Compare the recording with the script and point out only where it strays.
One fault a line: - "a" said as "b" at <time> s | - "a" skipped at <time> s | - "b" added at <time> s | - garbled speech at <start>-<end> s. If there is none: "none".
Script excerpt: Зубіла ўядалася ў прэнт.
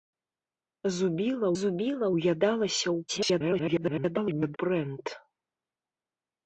- "зубіла" added at 1.6 s
- garbled speech at 3.1-4.6 s